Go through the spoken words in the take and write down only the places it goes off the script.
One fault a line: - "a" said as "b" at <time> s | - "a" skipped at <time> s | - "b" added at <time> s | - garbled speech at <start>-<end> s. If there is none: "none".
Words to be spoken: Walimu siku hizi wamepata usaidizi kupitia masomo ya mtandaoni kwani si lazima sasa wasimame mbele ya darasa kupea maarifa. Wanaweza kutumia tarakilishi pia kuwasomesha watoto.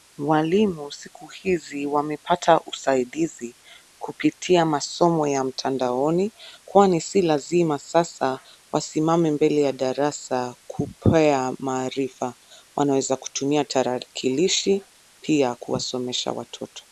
none